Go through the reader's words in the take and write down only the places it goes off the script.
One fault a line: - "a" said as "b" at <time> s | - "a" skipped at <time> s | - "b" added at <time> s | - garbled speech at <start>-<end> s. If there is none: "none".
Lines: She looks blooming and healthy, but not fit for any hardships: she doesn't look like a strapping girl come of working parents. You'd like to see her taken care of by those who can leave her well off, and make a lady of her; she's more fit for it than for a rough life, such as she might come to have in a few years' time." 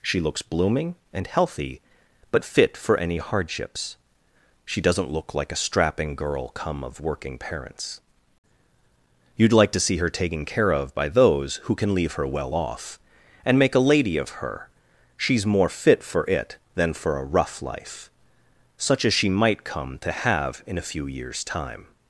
- "not" skipped at 2.4 s